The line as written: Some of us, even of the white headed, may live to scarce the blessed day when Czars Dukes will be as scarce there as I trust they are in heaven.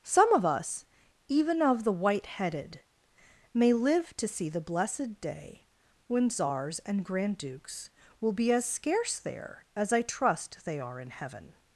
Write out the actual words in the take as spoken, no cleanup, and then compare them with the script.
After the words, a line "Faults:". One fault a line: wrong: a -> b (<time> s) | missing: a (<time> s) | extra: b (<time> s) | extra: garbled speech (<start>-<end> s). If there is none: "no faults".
Some of us, even of the white headed, may live to see the blessed day when Czars and Grand Dukes will be as scarce there as I trust they are in heaven.
Faults:
wrong: scarce -> see (4.3 s)
extra: and Grand (6.8 s)